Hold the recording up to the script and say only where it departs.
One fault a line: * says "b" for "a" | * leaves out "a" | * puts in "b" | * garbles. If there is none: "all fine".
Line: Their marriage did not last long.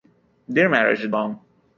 * leaves out "not last"